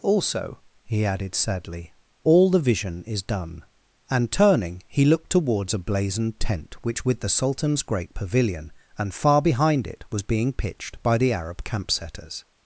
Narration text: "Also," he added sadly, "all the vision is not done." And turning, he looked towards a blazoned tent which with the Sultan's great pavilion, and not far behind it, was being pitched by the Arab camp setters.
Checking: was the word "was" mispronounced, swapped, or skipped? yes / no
no